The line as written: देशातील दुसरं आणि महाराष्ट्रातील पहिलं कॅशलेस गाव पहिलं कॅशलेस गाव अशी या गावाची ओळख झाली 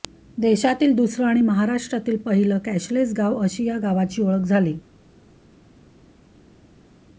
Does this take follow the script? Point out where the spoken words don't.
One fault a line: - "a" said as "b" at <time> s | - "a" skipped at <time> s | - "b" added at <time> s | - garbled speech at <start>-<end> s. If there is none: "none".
- "पहिलं कॅशलेस गाव" skipped at 3.4 s